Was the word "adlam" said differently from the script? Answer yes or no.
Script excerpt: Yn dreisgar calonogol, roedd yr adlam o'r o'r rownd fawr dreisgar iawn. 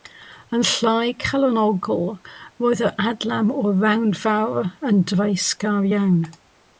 no